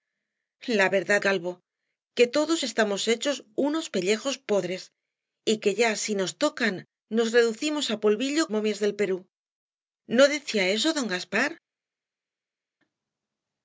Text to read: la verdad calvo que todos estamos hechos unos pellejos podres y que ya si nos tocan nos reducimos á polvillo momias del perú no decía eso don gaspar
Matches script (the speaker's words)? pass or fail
pass